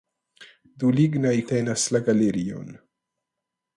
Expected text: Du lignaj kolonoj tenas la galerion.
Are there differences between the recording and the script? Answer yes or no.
yes